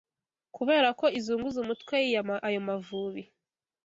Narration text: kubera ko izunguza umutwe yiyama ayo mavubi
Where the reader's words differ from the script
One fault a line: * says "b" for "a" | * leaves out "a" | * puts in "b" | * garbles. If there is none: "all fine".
all fine